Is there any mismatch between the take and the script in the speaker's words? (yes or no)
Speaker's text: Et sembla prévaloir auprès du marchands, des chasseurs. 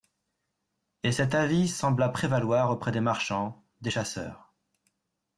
yes